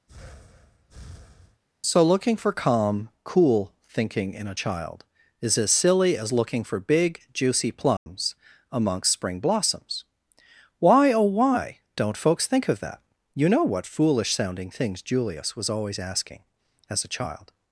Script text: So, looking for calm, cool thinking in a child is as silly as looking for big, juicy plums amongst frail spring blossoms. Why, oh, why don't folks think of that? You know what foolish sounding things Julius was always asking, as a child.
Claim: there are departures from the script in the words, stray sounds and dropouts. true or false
true